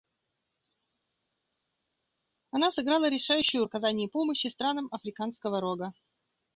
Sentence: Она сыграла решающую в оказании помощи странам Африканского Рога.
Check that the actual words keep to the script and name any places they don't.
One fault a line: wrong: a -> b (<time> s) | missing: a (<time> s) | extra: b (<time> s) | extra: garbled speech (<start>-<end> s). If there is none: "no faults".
no faults